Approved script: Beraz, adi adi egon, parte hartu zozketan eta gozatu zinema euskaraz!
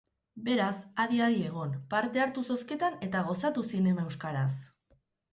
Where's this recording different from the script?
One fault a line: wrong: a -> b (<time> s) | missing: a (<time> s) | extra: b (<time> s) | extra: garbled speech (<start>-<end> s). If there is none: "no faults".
no faults